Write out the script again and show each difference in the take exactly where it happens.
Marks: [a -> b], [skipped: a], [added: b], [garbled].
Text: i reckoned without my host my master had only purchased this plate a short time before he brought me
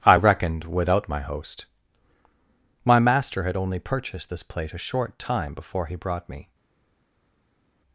i reckoned without my host my master had only purchased this plate a short time before he brought me